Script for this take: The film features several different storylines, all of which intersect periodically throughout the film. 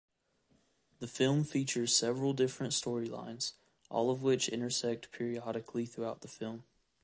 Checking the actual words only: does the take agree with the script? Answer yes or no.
yes